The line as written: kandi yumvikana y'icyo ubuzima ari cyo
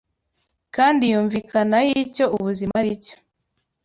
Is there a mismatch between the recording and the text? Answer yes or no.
no